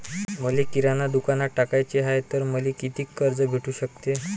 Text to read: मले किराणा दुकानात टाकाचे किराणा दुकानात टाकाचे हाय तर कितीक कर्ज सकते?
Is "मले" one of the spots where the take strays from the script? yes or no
no